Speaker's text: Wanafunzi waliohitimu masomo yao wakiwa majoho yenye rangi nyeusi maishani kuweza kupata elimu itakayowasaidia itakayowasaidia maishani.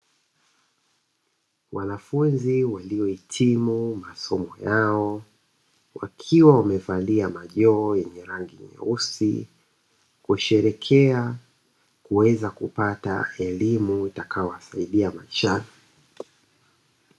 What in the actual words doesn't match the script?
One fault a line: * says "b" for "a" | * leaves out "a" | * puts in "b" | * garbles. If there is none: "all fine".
* puts in "wamevalia"
* says "kusherehekea" for "maishani"
* leaves out "itakayowasaidia"